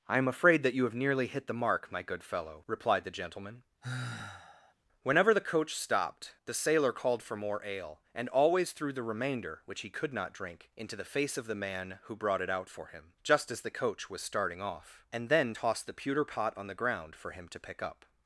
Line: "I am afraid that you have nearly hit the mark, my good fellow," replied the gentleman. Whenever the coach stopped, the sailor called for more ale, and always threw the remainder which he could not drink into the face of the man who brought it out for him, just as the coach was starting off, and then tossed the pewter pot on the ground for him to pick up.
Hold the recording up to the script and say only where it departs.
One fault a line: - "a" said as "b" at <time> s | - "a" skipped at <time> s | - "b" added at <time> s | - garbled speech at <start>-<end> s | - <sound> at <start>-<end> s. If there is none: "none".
- sigh at 3.8-4.7 s